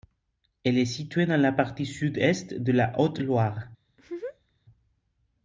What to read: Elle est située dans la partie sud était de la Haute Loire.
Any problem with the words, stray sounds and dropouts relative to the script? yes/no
yes